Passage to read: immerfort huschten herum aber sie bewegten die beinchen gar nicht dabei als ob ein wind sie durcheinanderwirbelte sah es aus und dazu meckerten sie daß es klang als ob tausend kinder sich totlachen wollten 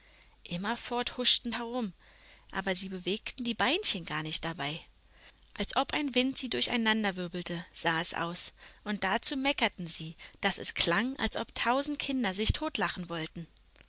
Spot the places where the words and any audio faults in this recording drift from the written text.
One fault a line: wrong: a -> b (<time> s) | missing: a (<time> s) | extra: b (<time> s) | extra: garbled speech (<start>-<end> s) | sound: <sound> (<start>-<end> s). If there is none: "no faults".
no faults